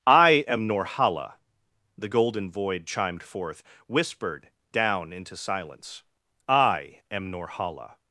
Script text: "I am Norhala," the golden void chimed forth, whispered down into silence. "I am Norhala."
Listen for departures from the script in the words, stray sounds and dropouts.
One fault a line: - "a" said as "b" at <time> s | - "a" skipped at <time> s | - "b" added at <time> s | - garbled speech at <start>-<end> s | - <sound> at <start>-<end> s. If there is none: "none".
none